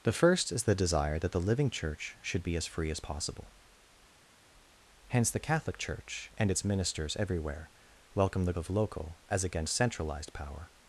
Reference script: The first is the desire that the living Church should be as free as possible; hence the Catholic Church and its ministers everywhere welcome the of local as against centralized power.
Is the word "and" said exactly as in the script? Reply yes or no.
yes